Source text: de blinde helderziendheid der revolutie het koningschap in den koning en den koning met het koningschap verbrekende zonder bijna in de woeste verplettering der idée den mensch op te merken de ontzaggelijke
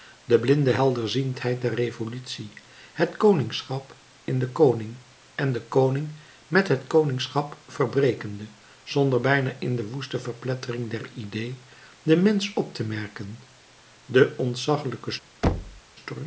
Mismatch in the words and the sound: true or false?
true